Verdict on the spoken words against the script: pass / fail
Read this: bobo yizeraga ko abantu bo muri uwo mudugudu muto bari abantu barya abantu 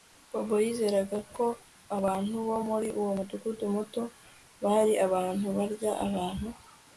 pass